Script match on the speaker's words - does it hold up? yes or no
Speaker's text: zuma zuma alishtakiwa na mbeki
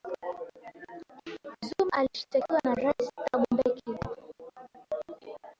no